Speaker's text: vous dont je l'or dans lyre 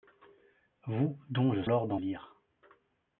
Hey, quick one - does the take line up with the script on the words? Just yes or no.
yes